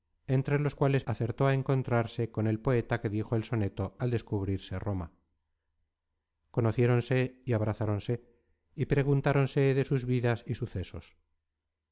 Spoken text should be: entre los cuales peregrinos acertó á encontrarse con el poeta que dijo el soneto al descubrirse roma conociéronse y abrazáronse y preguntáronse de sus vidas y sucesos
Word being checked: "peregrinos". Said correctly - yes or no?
no